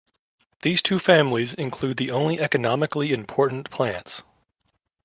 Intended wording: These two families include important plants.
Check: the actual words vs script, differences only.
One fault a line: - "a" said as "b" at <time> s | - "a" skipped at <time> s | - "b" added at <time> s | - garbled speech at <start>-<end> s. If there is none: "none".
- "the only economically" added at 2.0 s